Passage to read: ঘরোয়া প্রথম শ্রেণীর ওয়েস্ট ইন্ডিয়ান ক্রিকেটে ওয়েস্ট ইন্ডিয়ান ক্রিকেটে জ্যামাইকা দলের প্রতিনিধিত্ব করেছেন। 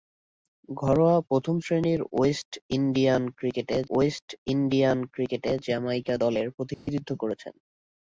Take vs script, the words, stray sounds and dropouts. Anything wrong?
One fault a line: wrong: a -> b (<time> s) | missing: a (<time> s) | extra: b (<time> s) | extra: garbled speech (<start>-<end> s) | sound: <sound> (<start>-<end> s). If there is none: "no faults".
sound: dropout (6.7-6.9 s)